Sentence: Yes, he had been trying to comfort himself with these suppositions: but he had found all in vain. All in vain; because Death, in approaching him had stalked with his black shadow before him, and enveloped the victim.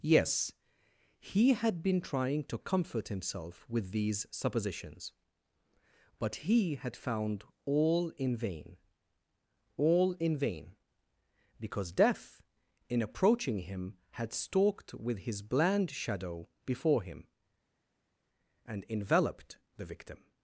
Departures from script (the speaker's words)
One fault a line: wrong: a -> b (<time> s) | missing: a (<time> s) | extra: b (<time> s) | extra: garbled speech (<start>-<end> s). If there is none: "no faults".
wrong: black -> bland (15.4 s)